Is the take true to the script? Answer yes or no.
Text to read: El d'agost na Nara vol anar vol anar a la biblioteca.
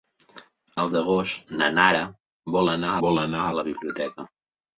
yes